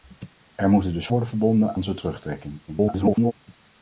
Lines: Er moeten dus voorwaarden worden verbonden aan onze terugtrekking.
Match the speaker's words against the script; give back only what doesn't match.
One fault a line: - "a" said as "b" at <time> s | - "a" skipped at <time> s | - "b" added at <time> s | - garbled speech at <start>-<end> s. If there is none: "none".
- "voorwaarden" skipped at 1.1 s
- "aan" skipped at 1.8 s
- garbled speech at 2.7-3.3 s